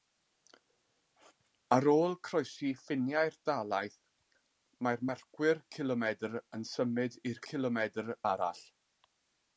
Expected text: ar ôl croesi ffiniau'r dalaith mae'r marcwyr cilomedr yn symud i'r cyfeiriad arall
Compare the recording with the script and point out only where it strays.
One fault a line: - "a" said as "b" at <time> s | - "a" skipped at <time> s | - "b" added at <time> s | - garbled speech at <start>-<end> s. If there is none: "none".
- "cyfeiriad" said as "cilomedr" at 7.5 s